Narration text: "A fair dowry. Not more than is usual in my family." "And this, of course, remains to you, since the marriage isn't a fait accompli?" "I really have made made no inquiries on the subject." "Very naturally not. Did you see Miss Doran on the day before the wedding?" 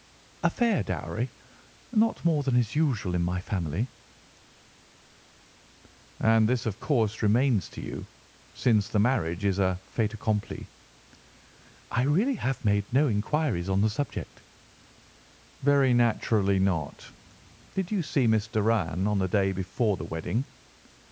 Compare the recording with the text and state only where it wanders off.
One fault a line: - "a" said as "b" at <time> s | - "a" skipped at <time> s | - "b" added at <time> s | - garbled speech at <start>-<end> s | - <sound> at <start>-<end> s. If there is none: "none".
- "isn't" said as "is" at 9.4 s
- "made" skipped at 12.9 s